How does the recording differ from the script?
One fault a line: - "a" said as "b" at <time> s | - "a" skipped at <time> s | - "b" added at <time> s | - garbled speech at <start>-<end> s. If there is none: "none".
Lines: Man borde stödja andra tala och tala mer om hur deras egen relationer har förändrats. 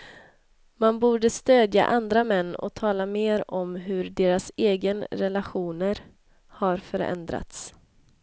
- "tala" said as "män" at 2.2 s